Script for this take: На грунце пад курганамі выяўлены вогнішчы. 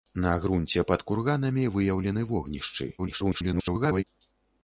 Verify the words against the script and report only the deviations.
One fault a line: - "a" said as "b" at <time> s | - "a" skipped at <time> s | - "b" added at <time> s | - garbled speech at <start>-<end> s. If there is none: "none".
- garbled speech at 3.0-4.0 s